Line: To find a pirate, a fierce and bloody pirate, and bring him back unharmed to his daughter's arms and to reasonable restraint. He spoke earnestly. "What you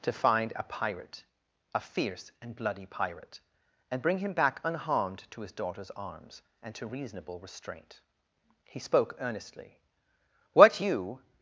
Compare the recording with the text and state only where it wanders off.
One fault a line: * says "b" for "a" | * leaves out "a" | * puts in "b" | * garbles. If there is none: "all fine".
all fine